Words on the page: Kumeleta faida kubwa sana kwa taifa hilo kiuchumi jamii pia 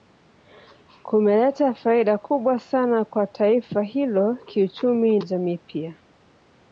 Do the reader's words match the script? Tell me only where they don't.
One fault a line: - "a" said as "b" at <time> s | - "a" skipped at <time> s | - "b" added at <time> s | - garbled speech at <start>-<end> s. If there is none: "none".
none